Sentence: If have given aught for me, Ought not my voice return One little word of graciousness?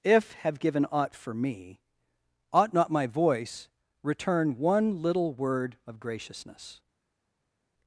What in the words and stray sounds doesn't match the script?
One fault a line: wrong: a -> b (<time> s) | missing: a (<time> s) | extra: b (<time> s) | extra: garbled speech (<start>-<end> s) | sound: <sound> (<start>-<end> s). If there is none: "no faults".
no faults